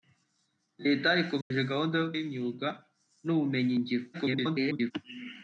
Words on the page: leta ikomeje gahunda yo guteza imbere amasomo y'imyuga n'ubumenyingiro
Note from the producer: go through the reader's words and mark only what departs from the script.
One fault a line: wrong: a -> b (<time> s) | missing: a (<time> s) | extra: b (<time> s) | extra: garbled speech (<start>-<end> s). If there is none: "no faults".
missing: guteza imbere amasomo (2.1 s)
extra: garbled speech (4.1-4.9 s)